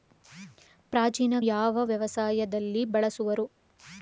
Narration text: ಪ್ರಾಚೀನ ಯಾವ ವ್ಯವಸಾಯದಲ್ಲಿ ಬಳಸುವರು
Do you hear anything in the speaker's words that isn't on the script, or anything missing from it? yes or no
no